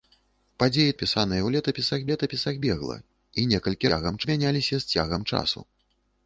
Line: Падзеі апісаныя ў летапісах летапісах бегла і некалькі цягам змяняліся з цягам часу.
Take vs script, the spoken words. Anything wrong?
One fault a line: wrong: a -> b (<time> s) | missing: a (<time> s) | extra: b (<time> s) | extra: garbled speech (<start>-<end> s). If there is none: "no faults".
no faults